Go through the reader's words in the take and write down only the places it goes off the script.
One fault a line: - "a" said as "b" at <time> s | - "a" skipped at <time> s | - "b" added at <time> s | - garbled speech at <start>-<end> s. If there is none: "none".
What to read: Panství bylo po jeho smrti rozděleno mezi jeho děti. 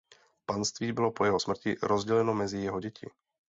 none